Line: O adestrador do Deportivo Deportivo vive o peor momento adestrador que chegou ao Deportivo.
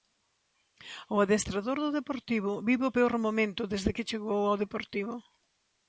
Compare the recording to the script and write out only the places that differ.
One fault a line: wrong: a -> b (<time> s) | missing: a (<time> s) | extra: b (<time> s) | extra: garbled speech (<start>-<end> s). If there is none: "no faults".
missing: Deportivo (2.5 s)
wrong: adestrador -> desde (3.7 s)